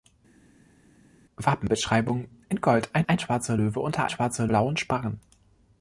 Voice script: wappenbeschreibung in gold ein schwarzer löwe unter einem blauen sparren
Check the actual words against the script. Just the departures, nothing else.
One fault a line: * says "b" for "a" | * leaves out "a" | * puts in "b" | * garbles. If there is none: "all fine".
* puts in "ein"
* says "schwarzer" for "einem"